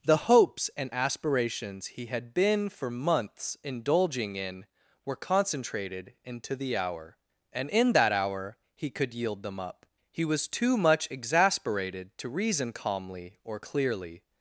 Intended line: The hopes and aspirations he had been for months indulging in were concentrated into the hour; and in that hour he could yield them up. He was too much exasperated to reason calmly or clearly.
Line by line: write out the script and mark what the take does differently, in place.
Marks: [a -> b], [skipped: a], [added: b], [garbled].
The hopes and aspirations he had been for months indulging in were concentrated into the hour; and in that hour he could yield them up. He was too much exasperated to reason calmly or clearly.